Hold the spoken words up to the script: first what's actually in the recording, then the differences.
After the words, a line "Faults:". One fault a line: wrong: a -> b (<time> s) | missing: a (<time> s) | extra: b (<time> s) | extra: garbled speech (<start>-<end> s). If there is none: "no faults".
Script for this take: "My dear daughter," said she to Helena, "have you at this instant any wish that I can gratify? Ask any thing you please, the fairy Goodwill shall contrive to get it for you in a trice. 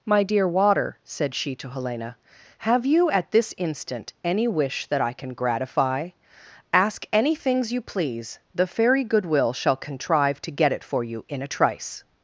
"My dear water," said she to Helena, "have you at this instant any wish that I can gratify? Ask any things you please, the fairy Goodwill shall contrive to get it for you in a trice.
Faults:
wrong: daughter -> water (0.5 s)
wrong: thing -> things (7.3 s)